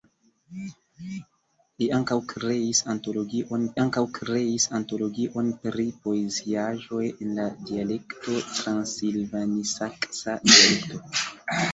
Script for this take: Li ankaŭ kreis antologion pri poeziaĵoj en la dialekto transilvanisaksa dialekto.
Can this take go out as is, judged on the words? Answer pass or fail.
fail